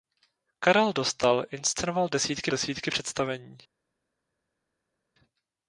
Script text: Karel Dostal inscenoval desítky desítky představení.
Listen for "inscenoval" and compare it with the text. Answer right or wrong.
right